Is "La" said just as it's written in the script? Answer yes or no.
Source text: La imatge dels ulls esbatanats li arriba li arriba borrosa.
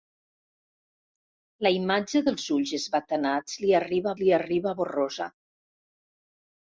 yes